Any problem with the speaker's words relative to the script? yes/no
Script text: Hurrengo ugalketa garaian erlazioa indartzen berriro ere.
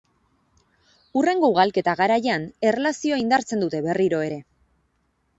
yes